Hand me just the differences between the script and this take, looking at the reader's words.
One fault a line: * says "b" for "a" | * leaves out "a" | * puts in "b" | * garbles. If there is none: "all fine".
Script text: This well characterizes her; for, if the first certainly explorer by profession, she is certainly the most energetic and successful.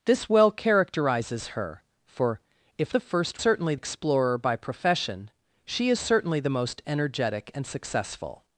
all fine